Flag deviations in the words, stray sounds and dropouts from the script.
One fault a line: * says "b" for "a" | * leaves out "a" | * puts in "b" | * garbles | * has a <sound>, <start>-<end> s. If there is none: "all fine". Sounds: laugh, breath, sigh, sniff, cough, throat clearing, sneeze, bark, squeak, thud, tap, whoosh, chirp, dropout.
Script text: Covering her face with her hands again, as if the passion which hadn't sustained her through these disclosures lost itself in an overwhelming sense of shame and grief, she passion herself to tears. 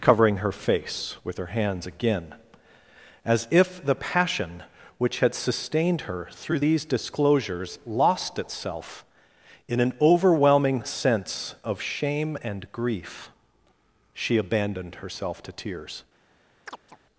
* says "had" for "hadn't"
* says "abandoned" for "passion"
* has a chirp, 16.7-17.0 s